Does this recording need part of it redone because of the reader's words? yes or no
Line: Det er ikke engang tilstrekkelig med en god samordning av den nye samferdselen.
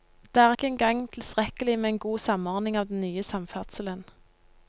no